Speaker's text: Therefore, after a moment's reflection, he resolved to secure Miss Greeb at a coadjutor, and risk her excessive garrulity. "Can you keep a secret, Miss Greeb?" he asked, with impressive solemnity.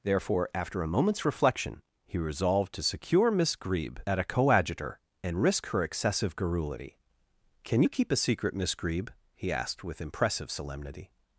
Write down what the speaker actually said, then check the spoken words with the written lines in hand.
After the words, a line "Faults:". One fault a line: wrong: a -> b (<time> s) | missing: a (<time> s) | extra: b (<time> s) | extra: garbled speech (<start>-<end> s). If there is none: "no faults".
Therefore, after a moment's reflection, he resolved to secure Miss Greeb at a coadjutor, and risk her excessive garrulity. "Can you keep a secret, Miss Greeb?" he asked, with impressive solemnity.
Faults:
no faults